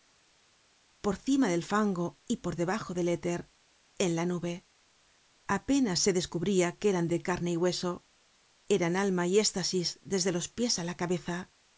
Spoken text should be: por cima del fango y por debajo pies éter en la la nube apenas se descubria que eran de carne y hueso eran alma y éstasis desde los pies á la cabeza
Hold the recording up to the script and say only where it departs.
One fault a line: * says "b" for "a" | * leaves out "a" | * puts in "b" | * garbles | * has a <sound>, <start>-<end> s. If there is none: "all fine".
* says "del" for "pies"
* leaves out "la"